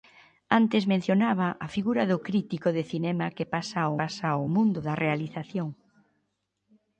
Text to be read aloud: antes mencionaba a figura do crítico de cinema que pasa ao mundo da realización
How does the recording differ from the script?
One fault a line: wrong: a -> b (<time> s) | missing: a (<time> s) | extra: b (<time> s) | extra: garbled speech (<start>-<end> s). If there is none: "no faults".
extra: pasa ao (4.0 s)